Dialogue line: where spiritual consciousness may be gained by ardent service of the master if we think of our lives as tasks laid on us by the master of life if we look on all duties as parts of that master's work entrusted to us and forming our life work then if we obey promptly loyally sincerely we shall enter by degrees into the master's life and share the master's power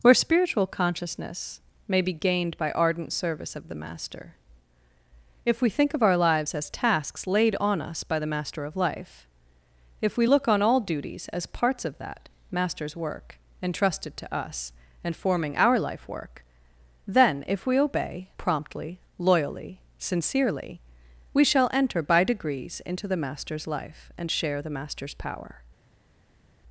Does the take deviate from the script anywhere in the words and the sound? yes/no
no